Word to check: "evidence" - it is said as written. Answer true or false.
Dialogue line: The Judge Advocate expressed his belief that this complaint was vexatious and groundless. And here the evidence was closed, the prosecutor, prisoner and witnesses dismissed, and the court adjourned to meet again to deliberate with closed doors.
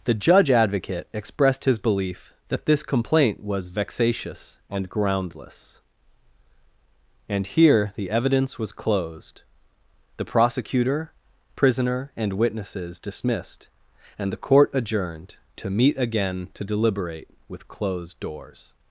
true